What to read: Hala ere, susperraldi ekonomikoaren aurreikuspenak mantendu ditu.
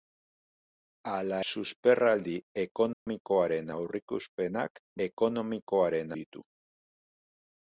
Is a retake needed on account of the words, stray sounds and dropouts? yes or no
yes